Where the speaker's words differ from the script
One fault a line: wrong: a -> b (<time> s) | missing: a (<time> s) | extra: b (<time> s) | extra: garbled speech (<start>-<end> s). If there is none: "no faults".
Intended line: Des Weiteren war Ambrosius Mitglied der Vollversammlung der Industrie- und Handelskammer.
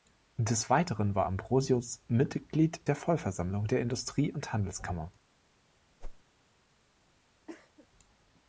no faults